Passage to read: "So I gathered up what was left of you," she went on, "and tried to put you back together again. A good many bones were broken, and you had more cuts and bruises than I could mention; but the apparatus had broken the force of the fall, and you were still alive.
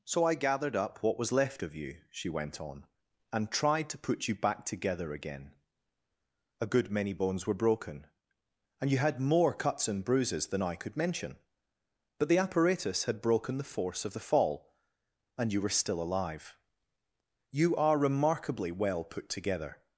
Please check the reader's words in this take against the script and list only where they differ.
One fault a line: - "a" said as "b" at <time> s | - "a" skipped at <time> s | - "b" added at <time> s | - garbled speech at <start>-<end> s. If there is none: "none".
- "You are remarkably well put together" added at 17.5 s